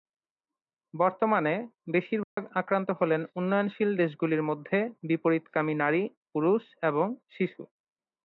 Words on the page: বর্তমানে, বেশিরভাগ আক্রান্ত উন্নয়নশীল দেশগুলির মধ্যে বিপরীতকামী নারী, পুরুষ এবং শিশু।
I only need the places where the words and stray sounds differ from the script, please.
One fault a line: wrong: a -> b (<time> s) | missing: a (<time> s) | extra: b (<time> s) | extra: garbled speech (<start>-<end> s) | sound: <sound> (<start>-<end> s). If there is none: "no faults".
sound: dropout (2.2-2.4 s)
extra: হলেন (2.9 s)